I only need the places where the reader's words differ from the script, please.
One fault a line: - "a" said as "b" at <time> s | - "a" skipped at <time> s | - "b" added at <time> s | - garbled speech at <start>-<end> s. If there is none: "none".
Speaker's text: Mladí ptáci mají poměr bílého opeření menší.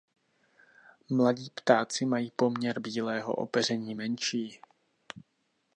none